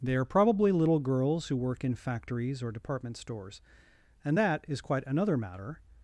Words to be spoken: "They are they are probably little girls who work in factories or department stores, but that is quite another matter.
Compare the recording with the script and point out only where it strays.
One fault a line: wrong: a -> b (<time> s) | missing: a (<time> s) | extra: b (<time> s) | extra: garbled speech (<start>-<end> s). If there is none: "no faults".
missing: they are (0.2 s)
wrong: but -> and (4.2 s)